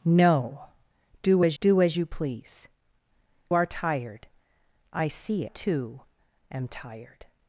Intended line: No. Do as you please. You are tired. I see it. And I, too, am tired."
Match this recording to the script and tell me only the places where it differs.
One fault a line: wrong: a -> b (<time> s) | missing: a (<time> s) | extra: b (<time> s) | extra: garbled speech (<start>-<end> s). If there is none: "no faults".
extra: do as (1.6 s)
missing: You (2.7 s)
missing: it And I (5.5 s)